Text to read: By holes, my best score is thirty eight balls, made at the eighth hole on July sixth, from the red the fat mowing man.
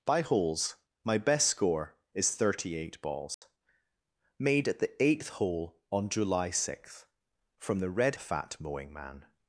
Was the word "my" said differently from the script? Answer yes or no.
no